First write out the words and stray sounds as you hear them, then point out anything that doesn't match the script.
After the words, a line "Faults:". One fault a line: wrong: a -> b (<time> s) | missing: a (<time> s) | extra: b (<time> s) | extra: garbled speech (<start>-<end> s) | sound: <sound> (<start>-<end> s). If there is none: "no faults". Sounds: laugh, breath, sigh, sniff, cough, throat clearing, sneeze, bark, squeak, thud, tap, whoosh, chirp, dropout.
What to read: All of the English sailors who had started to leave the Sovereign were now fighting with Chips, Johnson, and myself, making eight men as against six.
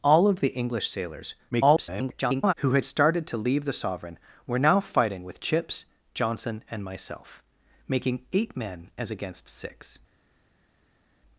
All of the English sailors [garbled] who had started to leave the Sovereign were now fighting with Chips, Johnson, and myself, making eight men as against six.
Faults:
extra: garbled speech (1.5-2.5 s)